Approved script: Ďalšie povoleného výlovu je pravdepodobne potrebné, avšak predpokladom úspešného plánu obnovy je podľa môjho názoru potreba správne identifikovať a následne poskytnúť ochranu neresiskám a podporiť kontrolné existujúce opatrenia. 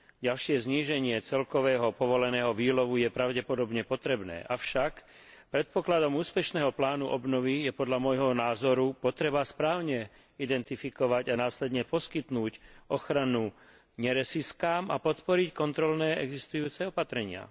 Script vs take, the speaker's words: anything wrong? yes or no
yes